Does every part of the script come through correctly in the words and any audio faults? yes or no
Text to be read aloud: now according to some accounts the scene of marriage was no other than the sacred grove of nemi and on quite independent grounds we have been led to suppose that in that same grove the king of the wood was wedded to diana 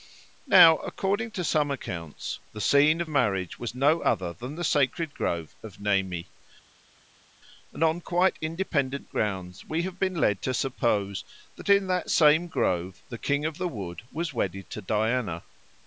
yes